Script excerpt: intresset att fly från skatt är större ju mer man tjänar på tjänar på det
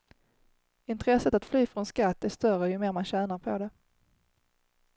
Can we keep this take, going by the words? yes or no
no